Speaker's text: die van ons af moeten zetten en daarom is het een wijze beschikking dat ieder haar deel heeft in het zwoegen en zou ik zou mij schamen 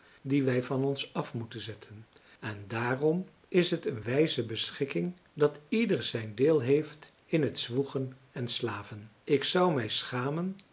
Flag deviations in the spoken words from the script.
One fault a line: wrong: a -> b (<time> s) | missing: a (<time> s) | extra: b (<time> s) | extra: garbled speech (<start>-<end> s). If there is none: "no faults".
extra: wij (0.4 s)
wrong: haar -> zijn (6.0 s)
wrong: zou -> slaven (8.5 s)